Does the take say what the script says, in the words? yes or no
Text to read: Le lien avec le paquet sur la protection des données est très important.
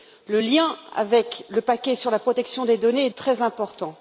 yes